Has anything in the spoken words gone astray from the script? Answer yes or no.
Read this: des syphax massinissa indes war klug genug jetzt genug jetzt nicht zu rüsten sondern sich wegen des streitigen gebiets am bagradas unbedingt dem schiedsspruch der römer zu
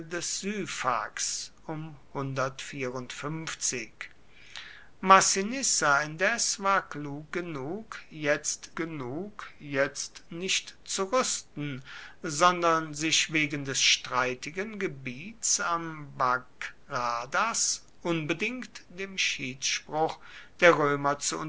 no